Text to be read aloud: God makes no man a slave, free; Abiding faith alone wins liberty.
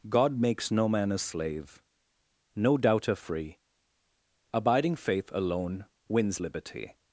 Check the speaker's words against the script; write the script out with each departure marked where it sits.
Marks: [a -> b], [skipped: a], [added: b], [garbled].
God makes no man a slave, [added: no doubter] free; Abiding faith alone wins liberty.